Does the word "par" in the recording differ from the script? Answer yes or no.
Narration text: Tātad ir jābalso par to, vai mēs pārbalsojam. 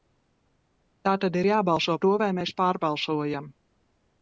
yes